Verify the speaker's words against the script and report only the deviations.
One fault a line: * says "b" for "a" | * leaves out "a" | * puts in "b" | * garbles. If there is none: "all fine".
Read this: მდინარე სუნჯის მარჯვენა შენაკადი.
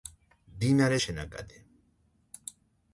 * leaves out "სუნჯის მარჯვენა"